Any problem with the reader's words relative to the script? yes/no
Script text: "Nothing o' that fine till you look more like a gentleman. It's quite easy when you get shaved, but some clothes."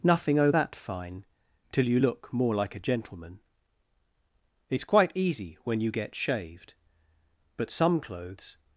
no